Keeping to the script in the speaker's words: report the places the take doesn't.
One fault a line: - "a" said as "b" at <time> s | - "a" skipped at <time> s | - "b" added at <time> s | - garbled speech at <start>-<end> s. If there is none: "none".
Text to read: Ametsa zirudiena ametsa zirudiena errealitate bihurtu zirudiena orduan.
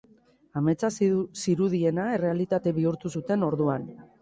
- "ametsa zirudiena" skipped at 2.1 s
- "zirudiena" said as "zuten" at 3.2 s